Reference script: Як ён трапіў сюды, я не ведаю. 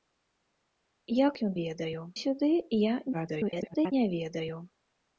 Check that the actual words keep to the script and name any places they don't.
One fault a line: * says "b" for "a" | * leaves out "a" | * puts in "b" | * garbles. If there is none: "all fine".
* says "ведаю" for "трапіў"
* garbles